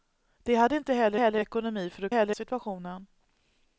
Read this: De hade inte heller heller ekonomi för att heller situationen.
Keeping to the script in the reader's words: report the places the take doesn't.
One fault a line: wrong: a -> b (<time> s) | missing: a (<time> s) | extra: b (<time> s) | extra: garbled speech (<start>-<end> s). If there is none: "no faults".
no faults